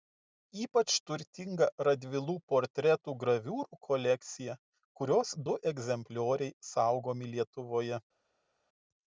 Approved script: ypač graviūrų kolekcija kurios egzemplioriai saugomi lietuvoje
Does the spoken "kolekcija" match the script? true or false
true